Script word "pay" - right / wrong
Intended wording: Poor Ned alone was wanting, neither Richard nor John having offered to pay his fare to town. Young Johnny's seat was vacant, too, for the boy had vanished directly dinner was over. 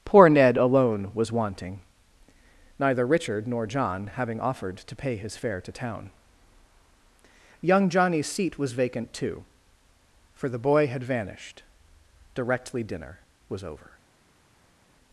right